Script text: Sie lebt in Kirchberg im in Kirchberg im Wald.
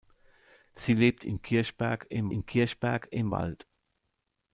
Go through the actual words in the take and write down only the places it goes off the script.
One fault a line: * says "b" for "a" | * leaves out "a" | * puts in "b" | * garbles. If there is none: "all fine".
all fine